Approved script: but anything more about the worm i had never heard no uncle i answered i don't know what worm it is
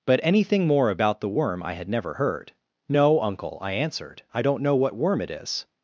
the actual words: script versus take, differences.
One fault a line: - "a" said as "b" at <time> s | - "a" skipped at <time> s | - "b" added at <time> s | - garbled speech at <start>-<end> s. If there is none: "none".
none